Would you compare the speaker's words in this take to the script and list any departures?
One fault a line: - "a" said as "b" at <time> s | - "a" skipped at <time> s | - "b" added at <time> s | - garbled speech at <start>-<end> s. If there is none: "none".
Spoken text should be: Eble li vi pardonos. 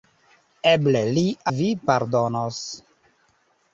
none